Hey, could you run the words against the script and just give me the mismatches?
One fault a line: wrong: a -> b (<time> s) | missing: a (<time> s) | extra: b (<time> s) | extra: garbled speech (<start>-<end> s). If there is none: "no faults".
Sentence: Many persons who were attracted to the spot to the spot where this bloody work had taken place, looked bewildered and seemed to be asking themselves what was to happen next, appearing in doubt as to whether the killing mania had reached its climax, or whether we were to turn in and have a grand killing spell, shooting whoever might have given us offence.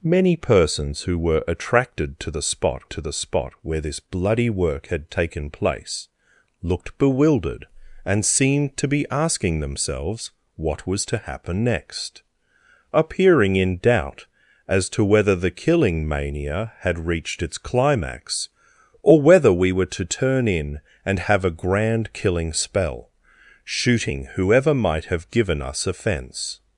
no faults